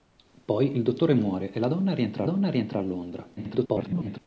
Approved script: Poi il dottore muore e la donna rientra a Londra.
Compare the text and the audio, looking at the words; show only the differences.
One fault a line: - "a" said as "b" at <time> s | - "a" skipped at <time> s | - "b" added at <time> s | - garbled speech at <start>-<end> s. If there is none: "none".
- "donna rientra" added at 2.2 s
- garbled speech at 3.4-4.2 s